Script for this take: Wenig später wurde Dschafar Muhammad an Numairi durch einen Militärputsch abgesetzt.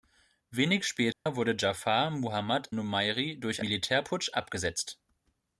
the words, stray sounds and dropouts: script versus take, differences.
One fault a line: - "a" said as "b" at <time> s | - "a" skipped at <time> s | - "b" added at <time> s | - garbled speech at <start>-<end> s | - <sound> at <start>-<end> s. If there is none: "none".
- dropout at 1.1-1.3 s
- "an" skipped at 2.7 s
- "einen" skipped at 3.6 s